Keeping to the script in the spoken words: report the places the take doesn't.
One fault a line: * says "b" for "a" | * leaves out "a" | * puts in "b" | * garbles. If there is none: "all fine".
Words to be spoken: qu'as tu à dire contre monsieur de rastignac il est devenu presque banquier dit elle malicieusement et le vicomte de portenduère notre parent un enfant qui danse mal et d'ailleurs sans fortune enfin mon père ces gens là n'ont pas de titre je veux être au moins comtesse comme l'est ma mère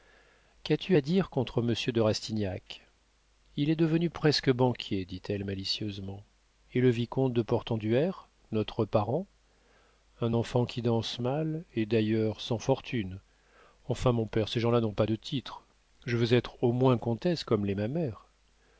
all fine